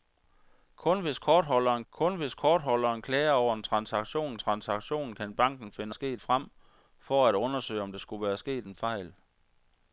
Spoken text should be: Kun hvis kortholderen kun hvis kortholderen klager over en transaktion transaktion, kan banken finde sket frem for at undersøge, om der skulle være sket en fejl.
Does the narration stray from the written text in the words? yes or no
no